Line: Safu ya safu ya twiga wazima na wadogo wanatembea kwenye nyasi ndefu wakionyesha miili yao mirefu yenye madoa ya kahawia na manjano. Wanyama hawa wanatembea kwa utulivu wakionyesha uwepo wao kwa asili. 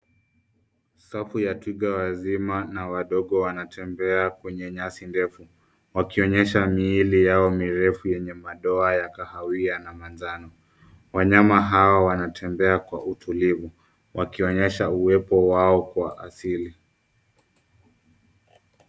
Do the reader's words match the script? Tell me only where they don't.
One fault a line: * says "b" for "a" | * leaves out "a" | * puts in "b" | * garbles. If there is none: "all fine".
* leaves out "safu ya"